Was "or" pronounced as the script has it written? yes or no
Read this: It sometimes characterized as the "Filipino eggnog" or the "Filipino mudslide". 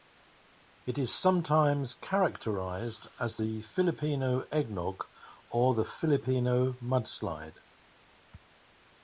yes